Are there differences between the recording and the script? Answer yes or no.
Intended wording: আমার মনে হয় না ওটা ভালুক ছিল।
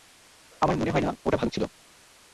no